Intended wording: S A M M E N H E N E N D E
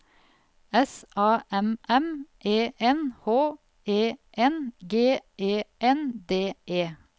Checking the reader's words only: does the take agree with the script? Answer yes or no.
no